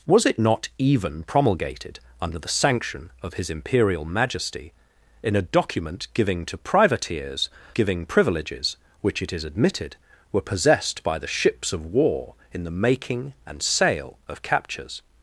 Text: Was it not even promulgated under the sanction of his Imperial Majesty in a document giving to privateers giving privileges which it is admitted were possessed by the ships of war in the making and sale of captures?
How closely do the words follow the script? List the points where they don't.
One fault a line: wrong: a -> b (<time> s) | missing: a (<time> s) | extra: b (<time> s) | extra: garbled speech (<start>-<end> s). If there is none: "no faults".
no faults